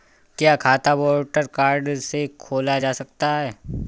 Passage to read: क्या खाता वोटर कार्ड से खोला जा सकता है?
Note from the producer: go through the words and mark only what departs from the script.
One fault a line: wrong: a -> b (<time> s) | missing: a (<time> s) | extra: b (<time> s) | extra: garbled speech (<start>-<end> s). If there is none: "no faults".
no faults